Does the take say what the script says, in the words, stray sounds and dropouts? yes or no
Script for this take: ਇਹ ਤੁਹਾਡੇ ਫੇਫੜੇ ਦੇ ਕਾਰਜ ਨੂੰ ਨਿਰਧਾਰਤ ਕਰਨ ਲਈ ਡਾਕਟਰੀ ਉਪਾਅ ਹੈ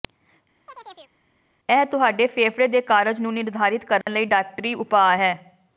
no